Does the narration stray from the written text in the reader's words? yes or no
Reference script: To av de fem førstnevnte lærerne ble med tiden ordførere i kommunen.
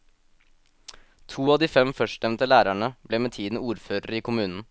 no